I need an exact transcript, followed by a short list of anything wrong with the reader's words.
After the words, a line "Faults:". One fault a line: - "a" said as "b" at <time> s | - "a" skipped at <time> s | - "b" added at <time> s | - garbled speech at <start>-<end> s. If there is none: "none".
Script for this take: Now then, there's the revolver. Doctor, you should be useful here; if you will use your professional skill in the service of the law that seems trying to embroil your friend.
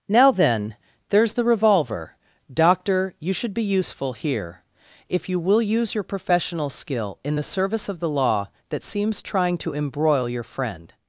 Now then, there's the revolver. Doctor, you should be useful here; if you will use your professional skill in the service of the law that seems trying to embroil your friend.
Faults:
none